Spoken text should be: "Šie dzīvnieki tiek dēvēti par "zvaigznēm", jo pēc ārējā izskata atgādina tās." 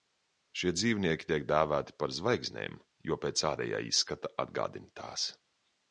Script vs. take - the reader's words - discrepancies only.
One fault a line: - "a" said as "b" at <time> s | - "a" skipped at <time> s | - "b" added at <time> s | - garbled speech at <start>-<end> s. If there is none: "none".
none